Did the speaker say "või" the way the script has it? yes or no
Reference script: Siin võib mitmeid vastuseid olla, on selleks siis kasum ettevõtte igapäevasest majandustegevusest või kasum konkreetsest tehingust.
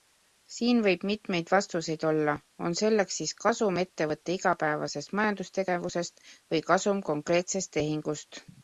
yes